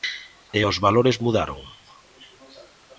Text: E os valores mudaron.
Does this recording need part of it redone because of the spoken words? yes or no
no